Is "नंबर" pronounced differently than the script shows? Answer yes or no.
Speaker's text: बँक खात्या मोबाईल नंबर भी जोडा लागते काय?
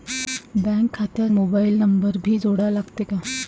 no